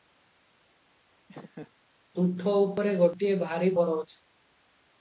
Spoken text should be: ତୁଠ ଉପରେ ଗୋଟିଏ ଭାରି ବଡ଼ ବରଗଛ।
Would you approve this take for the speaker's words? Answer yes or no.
no